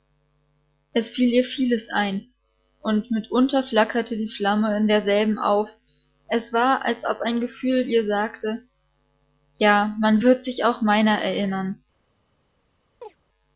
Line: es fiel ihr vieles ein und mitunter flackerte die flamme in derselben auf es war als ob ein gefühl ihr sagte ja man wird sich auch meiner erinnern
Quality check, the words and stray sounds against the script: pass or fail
fail